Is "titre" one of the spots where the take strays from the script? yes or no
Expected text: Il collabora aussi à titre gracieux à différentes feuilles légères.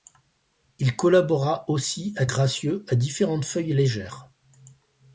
yes